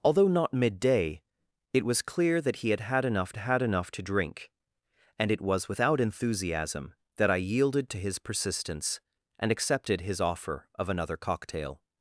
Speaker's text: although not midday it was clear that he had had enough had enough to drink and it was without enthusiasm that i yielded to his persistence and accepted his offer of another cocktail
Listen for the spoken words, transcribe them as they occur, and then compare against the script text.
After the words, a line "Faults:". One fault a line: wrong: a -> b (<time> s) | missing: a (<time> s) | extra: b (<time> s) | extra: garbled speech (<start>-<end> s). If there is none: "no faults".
although not midday it was clear that he had had enough had enough to drink and it was without enthusiasm that i yielded to his persistence and accepted his offer of another cocktail
Faults:
no faults